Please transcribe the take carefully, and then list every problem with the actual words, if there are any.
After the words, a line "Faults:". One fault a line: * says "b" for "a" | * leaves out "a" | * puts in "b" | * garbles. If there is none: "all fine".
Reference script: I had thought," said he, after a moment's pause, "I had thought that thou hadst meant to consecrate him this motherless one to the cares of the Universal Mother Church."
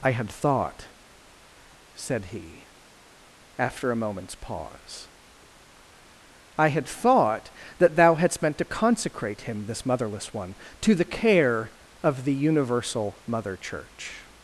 I had thought," said he, after a moment's pause, "I had thought that thou hadst meant to consecrate him this motherless one to the care of the Universal Mother Church."
Faults:
* says "care" for "cares"